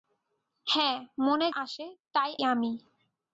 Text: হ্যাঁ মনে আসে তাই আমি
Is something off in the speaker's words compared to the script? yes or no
no